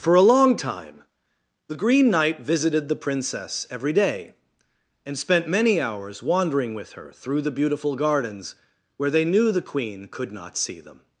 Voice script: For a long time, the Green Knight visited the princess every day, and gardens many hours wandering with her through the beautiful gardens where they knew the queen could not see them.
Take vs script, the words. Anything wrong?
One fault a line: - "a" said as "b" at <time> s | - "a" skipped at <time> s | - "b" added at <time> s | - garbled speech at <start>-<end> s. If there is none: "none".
- "gardens" said as "spent" at 5.2 s